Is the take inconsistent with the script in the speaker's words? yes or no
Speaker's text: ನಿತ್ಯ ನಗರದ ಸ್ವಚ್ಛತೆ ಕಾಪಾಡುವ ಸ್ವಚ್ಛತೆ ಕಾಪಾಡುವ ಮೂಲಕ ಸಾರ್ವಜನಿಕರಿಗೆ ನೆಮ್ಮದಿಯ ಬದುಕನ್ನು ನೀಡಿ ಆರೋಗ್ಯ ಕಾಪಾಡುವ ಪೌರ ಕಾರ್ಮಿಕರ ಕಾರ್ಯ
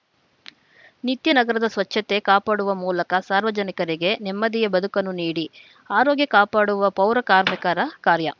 yes